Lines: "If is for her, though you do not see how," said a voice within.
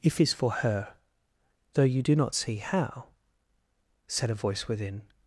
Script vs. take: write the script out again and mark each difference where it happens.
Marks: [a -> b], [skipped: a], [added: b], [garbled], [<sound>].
"If is for her, though you do not see how," said a voice within.